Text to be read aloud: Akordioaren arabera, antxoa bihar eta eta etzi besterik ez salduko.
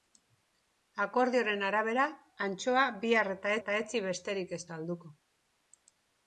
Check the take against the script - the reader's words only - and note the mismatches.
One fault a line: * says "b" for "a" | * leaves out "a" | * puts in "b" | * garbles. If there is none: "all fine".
all fine